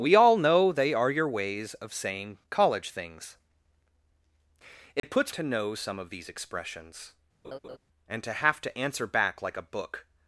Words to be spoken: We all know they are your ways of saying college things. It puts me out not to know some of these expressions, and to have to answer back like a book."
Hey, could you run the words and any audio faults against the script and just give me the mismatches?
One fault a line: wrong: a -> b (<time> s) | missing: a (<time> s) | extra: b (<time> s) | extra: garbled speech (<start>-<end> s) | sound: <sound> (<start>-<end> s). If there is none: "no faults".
sound: dropout (5.0-5.0 s)
missing: me out not (5.3 s)
sound: laugh (7.4-7.8 s)